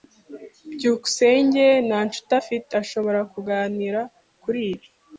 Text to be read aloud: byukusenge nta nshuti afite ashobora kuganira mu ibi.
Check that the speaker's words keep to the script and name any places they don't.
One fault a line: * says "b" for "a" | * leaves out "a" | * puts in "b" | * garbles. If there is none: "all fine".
* says "kuri" for "mu"